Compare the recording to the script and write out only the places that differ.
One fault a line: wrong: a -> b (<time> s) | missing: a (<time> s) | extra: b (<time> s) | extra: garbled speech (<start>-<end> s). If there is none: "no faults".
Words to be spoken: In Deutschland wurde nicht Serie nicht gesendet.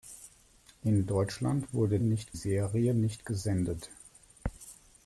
no faults